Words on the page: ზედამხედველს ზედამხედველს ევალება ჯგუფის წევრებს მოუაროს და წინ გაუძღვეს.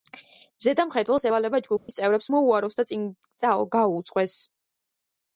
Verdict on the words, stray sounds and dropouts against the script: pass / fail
fail